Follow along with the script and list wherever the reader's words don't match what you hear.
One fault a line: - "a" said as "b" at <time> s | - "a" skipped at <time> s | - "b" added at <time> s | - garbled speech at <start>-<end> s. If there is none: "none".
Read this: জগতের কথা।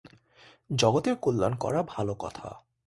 - "কল্যাণ করা ভাল" added at 1.1 s